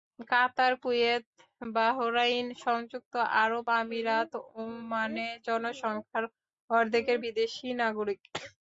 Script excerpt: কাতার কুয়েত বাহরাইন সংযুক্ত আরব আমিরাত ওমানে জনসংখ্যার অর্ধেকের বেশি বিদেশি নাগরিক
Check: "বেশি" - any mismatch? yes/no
yes